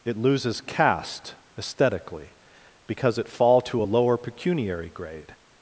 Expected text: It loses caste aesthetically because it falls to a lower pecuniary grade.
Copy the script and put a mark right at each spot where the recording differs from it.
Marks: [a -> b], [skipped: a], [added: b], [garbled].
It loses caste aesthetically because it [falls -> fall] to a lower pecuniary grade.